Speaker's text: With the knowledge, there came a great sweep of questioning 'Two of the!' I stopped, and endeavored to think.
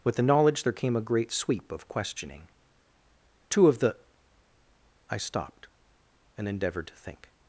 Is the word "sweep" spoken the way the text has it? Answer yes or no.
yes